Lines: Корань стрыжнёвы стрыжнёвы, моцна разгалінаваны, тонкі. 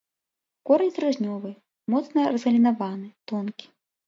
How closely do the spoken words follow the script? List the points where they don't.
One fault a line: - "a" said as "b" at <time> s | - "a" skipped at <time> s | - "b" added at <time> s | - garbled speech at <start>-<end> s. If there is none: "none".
- "стрыжнёвы" skipped at 1.5 s